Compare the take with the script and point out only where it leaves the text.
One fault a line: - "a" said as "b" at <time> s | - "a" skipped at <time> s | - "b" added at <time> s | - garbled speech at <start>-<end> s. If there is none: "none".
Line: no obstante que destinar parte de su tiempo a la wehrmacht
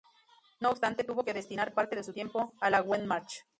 - "tuvo" added at 1.0 s